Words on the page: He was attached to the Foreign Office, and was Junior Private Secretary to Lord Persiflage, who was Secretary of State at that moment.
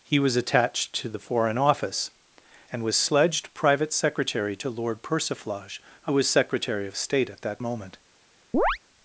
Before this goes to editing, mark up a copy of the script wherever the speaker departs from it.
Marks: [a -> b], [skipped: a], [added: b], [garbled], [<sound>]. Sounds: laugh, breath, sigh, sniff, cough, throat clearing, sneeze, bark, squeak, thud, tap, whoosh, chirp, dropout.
He was attached to the Foreign Office, and was [Junior -> Sledged] Private Secretary to Lord Persiflage, who was Secretary of State at that moment. [chirp]